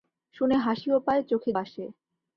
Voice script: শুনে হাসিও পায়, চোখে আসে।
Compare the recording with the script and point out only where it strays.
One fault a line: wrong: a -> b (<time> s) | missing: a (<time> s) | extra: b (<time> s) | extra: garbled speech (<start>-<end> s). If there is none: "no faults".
no faults